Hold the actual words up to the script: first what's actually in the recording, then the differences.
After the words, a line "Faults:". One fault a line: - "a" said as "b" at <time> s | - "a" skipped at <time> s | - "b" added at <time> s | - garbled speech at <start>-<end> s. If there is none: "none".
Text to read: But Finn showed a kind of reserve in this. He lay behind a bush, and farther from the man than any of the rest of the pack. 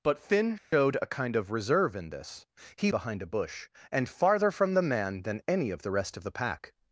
But Finn showed a kind of reserve in this. He behind a bush, and farther from the man than any of the rest of the pack.
Faults:
- "lay" skipped at 2.9 s